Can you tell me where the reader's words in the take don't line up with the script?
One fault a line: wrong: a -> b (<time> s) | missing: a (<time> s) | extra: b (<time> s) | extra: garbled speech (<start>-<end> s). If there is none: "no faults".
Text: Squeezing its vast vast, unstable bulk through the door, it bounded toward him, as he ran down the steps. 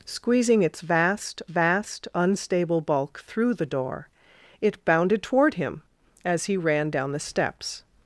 no faults